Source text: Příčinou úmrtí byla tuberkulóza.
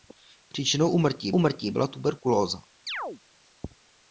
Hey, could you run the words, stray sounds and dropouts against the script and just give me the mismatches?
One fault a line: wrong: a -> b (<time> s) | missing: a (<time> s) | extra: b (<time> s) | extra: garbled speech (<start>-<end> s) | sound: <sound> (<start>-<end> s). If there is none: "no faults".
extra: úmrtí (1.3 s)
sound: chirp (2.9-3.2 s)